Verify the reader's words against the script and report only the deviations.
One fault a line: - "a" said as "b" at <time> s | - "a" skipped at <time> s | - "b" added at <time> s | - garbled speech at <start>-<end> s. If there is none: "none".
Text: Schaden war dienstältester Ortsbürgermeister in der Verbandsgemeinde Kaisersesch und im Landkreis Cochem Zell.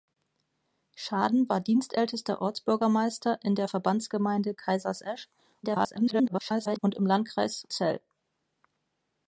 - garbled speech at 5.6-6.8 s
- "Cochem" skipped at 7.7 s